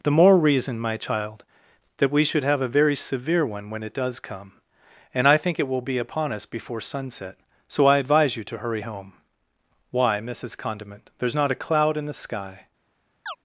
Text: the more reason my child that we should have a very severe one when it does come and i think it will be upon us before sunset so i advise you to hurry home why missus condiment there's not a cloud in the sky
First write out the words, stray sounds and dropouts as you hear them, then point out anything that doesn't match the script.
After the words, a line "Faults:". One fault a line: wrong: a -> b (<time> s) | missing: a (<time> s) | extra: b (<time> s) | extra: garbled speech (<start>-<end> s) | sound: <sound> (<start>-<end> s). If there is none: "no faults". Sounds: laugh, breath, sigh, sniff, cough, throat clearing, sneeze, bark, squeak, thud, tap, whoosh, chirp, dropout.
the more reason my child that we should have a very severe one when it does come and i think it will be upon us before sunset so i advise you to hurry home why missus condiment there's not a cloud in the sky
Faults:
sound: chirp (13.3-13.4 s)